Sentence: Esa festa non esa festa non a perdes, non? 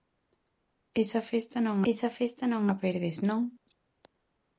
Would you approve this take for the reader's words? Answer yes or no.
yes